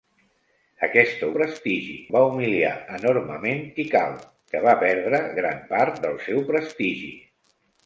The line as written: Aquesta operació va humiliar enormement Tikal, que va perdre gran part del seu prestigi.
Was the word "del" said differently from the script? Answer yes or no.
no